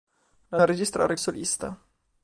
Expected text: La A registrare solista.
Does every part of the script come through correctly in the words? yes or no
yes